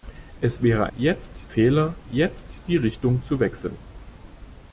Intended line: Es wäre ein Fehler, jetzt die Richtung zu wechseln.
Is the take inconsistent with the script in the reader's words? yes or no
yes